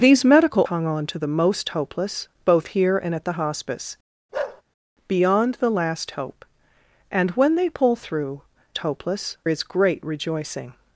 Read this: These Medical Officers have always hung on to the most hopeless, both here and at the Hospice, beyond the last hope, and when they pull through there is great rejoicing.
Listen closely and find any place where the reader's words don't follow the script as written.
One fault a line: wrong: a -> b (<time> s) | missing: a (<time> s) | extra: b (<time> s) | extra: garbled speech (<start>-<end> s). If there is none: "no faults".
missing: Officers have always (0.6 s)
wrong: there -> hopeless (8.8 s)